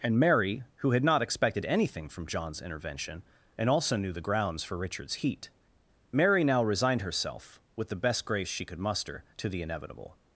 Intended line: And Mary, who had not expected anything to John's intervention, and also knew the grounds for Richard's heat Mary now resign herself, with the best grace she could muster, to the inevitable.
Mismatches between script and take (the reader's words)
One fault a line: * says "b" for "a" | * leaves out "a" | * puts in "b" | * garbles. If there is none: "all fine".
* says "from" for "to"
* says "resigned" for "resign"